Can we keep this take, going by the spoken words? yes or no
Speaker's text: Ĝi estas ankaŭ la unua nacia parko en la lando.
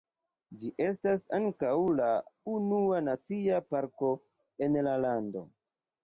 yes